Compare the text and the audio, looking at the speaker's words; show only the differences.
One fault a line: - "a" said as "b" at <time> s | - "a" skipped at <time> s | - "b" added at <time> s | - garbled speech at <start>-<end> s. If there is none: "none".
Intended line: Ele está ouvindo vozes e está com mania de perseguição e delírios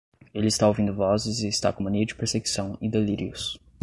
none